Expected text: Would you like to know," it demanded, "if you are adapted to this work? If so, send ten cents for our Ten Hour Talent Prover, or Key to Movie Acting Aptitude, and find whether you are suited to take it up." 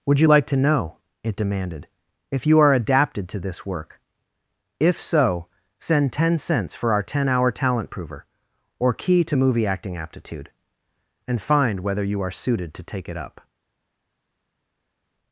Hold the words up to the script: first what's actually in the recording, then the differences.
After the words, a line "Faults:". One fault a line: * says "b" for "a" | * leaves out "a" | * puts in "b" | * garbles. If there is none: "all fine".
Would you like to know," it demanded, "if you are adapted to this work? If so, send ten cents for our Ten Hour Talent Prover, or Key to Movie Acting Aptitude, and find whether you are suited to take it up."
Faults:
all fine